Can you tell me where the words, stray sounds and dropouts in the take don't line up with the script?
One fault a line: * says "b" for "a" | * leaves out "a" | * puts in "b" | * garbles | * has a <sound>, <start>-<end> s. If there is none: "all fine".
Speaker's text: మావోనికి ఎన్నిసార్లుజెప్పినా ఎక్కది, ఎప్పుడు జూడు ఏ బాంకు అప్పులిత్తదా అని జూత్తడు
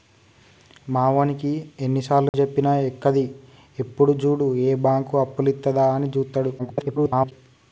* has a dropout, 2.3-2.3 s
* garbles